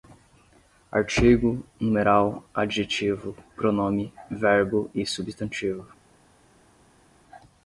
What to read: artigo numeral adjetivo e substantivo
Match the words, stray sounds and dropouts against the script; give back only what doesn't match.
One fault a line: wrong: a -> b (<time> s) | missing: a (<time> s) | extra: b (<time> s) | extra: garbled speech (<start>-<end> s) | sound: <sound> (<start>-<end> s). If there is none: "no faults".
extra: pronome verbo (3.5 s)